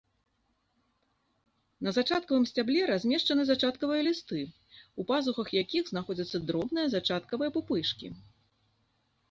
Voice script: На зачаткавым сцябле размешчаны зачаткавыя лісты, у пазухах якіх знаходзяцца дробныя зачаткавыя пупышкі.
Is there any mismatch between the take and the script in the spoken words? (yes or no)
no